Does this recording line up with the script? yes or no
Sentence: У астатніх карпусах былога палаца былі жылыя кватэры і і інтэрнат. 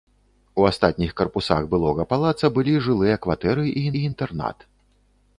yes